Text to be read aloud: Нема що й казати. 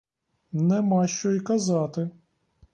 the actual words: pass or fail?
pass